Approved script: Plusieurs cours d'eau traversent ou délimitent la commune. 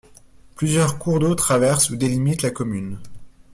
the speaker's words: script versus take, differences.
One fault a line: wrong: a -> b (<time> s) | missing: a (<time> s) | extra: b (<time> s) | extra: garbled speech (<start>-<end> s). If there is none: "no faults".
no faults